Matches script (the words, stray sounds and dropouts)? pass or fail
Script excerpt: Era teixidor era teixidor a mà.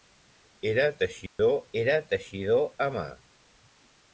fail